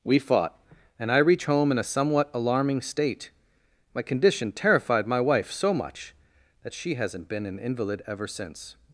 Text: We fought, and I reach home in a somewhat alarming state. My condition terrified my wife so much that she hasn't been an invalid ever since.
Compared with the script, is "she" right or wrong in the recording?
right